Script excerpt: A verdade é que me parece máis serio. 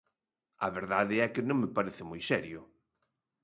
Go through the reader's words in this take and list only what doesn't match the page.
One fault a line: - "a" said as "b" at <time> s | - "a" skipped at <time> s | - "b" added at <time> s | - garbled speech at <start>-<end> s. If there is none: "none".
- "non" added at 1.5 s
- "máis" said as "moi" at 2.1 s